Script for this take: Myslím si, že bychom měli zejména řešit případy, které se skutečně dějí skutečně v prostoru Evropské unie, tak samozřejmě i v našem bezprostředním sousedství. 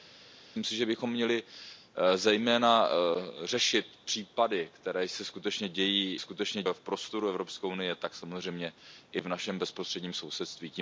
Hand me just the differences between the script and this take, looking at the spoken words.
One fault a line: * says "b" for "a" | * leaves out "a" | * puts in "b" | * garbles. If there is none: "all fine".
all fine